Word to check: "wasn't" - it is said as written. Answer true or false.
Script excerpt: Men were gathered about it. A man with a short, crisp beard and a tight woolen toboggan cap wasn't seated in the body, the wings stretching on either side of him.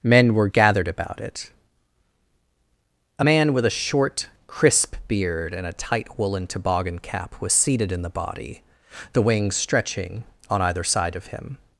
false